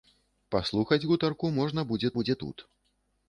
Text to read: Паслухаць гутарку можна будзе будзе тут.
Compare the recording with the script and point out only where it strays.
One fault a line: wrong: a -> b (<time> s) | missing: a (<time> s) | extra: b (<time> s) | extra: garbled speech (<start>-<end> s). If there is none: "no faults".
no faults